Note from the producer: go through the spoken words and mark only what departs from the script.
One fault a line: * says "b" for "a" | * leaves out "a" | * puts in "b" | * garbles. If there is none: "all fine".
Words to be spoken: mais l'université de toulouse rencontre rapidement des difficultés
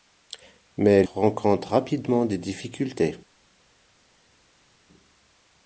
* leaves out "l'université de toulouse"